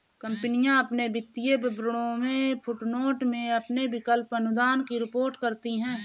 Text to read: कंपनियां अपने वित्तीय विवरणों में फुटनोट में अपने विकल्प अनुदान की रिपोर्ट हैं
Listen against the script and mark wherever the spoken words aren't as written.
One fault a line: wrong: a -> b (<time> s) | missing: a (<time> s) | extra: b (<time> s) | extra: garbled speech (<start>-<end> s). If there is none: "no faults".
extra: करती (5.4 s)